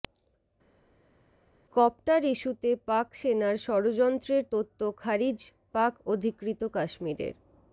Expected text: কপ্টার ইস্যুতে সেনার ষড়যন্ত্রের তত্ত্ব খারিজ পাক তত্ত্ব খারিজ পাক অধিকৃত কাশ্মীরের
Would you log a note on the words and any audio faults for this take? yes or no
yes